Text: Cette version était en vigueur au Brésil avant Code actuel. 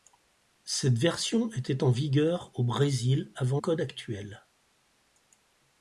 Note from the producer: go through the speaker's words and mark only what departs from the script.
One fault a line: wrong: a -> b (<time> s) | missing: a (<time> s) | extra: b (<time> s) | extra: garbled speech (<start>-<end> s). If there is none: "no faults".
no faults